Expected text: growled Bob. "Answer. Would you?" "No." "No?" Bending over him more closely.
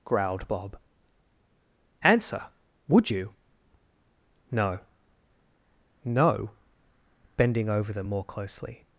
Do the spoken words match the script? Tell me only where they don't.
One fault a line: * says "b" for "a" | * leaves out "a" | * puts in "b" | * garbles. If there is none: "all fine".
* says "them" for "him"